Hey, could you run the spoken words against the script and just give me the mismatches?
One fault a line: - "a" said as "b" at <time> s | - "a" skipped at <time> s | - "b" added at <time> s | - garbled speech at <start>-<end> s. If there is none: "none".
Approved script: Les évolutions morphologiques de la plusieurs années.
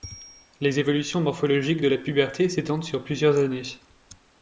- "puberté s'étendent sur" added at 2.0 s